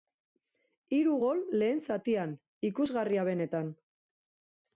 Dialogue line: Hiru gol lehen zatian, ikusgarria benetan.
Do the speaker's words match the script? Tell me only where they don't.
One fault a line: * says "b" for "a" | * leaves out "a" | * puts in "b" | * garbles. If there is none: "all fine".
all fine